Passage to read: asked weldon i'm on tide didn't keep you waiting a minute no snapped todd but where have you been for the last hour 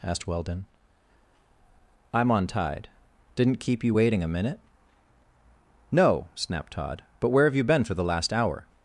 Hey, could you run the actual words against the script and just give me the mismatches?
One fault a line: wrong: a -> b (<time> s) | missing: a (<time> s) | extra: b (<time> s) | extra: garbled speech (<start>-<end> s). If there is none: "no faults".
no faults